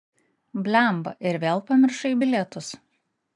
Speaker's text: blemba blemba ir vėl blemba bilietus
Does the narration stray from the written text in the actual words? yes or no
yes